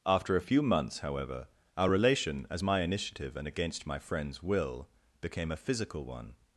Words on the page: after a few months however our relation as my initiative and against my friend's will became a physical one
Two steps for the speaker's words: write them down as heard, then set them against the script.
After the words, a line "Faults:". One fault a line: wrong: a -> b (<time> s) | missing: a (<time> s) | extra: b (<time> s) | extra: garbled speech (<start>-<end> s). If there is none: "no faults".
after a few months however our relation as my initiative and against my friend's will became a physical one
Faults:
no faults